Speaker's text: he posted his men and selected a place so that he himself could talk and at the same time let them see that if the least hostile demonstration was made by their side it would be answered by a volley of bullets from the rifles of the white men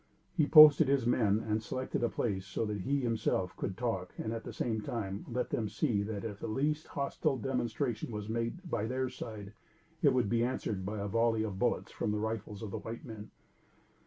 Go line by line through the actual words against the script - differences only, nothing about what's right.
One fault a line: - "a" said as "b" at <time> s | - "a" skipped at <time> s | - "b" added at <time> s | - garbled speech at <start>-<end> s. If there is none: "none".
none